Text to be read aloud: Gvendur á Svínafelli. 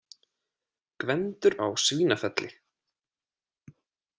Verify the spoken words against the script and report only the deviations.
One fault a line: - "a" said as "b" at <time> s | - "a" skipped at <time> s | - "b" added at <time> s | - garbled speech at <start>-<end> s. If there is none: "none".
none